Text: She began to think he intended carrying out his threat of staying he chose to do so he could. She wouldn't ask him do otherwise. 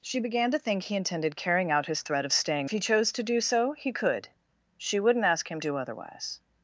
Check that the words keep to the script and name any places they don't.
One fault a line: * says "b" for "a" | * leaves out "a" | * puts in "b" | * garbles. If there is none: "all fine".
all fine